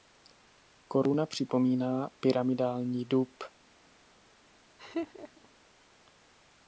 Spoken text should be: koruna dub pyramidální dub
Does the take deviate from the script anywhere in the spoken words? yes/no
yes